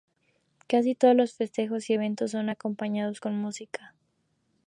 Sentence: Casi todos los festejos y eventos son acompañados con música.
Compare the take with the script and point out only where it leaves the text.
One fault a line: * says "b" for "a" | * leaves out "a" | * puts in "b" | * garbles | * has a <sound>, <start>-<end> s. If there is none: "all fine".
all fine